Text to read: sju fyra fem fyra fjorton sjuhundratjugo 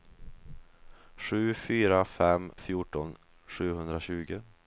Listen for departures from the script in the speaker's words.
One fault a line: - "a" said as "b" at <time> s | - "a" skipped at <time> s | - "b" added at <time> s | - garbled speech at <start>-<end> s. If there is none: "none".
- "fyra" skipped at 2.5 s